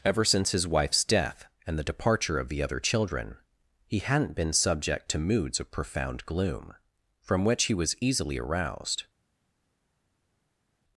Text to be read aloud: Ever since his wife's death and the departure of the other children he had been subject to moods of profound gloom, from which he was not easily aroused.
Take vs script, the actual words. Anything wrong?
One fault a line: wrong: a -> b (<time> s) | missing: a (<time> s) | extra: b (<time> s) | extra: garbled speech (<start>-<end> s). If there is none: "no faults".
wrong: had -> hadn't (4.0 s)
missing: not (8.0 s)